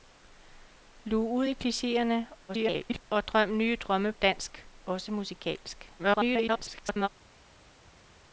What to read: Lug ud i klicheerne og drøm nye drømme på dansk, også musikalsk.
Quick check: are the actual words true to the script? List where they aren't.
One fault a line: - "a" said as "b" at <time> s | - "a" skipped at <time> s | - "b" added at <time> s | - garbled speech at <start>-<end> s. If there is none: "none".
- garbled speech at 2.5-3.0 s
- "på" skipped at 4.1 s
- garbled speech at 6.0-7.1 s